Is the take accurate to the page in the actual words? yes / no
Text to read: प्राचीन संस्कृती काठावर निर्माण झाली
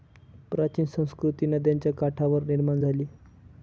no